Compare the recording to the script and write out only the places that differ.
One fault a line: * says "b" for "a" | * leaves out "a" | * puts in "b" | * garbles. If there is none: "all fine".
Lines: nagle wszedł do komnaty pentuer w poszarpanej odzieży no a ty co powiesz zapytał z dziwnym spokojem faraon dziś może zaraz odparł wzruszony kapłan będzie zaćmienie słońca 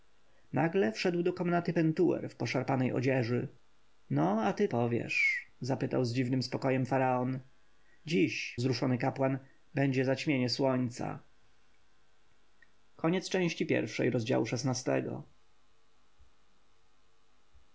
* leaves out "co"
* leaves out "może zaraz odparł"